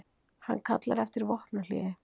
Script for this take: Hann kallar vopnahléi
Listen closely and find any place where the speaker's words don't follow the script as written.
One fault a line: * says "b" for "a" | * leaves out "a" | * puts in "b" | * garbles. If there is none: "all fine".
* puts in "eftir"